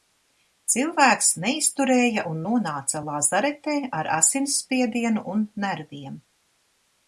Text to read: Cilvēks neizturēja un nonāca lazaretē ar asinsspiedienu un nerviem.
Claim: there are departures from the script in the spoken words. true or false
false